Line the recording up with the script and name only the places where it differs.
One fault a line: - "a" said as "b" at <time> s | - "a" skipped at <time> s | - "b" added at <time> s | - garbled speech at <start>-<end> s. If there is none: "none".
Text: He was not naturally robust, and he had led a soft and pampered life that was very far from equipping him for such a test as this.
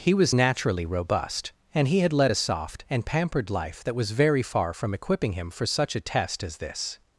- "not" skipped at 0.3 s